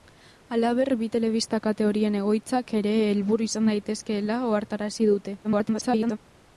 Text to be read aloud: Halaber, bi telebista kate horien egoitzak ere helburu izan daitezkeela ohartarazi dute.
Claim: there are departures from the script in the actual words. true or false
true